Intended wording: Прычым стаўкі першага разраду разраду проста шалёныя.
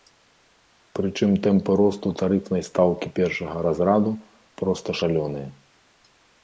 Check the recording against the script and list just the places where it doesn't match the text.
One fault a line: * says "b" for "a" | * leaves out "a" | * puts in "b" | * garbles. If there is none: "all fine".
* puts in "тэмпы росту тарыфнай"
* leaves out "разраду"